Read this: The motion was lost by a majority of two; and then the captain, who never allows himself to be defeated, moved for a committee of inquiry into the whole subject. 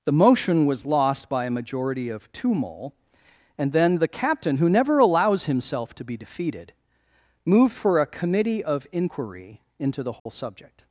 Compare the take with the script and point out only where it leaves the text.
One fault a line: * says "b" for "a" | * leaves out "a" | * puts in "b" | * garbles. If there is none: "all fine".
* puts in "mole"